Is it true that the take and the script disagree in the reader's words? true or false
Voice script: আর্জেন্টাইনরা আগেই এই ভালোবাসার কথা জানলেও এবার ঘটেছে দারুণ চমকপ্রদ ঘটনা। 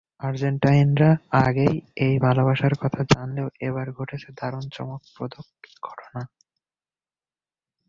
false